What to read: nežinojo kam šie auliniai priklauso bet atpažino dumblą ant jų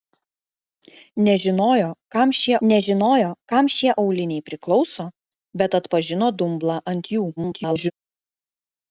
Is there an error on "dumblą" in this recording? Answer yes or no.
no